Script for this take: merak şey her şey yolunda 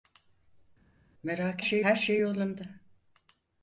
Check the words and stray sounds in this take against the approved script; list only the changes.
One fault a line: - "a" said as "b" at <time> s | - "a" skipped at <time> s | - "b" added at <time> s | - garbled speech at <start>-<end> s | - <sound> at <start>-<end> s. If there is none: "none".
none